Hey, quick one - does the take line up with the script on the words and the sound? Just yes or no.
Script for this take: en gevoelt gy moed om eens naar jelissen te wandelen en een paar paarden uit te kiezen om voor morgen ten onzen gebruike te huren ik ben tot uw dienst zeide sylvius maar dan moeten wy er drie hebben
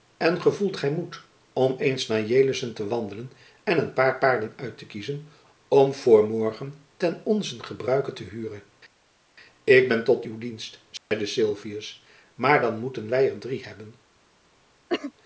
no